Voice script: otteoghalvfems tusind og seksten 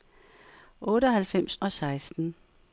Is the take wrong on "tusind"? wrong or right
wrong